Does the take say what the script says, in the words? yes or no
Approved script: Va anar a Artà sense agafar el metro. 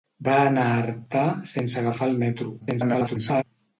no